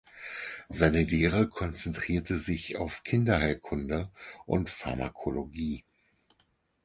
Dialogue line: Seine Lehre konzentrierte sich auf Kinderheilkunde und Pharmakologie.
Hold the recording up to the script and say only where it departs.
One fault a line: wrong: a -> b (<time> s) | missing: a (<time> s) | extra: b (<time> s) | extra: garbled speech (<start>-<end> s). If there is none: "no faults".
no faults